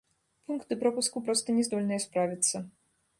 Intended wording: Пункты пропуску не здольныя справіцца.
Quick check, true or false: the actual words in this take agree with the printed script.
false